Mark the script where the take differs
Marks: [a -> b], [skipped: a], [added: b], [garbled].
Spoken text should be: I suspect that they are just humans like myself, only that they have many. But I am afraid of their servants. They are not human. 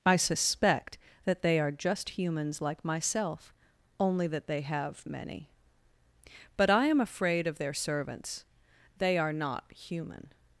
I suspect that they are just humans like myself, only that they have many. But I am afraid of their servants. They are not human.